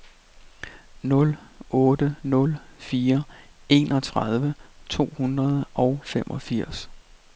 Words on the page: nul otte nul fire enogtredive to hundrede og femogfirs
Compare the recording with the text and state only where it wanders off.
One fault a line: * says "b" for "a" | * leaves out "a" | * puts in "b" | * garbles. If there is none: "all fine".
all fine